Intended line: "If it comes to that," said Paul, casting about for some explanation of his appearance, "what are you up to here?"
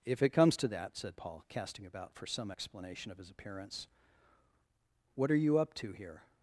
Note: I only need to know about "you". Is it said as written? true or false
true